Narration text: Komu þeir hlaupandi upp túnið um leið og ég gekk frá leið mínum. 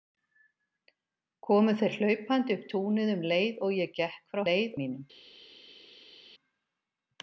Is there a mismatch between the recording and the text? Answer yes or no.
no